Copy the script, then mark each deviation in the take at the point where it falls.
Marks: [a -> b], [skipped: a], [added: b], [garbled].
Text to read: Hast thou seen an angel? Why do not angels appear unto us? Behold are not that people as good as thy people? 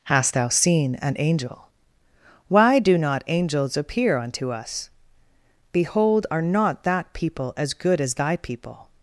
Hast thou seen an angel? Why do not angels appear unto us? Behold are not that people as good as thy people?